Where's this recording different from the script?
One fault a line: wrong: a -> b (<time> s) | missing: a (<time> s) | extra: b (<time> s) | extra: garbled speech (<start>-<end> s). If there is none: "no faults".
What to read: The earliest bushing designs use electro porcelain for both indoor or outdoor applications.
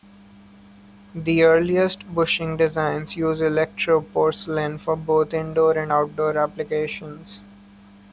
wrong: or -> and (5.8 s)